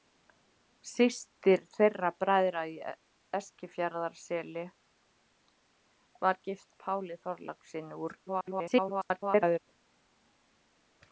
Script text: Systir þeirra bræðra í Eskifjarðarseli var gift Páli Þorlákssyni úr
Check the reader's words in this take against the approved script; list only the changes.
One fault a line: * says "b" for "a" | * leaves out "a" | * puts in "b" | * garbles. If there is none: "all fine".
* garbles